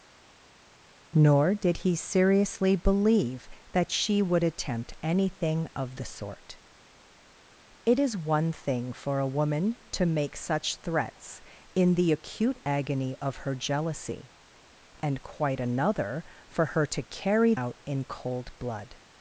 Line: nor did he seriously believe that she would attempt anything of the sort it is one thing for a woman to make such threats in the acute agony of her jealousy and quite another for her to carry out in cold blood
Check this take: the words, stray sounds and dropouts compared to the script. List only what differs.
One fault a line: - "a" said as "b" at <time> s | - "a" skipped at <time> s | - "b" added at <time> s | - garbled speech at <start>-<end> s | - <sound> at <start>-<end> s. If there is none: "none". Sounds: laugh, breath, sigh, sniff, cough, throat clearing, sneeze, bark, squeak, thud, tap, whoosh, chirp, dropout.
none